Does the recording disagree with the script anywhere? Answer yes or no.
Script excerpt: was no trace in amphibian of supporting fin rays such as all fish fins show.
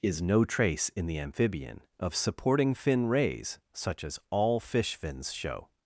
yes